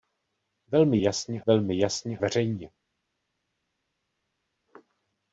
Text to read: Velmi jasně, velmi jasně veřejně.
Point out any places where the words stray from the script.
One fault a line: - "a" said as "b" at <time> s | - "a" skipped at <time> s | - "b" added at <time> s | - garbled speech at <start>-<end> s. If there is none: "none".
none